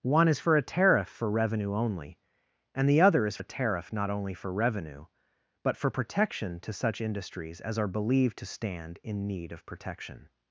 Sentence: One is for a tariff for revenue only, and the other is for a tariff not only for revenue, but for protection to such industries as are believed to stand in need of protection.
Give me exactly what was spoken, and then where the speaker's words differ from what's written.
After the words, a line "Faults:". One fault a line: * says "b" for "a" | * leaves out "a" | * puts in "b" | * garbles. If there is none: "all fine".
One is for a tariff for revenue only, and the other is a tariff not only for revenue, but for protection to such industries as are believed to stand in need of protection.
Faults:
* leaves out "for"